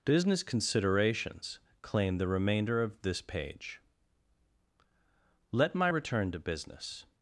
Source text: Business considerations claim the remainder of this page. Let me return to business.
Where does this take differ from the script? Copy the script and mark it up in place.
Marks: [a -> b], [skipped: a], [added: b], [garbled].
Business considerations claim the remainder of this page. Let [me -> my] return to business.